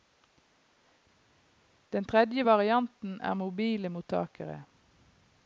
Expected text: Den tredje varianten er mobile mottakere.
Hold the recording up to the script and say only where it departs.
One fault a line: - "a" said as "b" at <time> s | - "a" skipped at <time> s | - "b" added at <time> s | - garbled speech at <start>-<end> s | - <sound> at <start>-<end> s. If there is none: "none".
none